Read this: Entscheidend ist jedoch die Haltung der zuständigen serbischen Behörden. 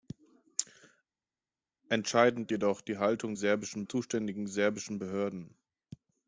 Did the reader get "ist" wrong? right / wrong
wrong